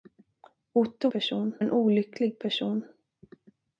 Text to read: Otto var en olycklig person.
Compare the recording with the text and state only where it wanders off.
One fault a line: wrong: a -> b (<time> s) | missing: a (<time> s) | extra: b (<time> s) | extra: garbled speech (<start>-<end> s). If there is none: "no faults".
wrong: var -> person (1.1 s)